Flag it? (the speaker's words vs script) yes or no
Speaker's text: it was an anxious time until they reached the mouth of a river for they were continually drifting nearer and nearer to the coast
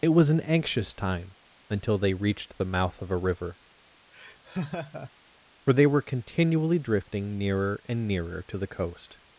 no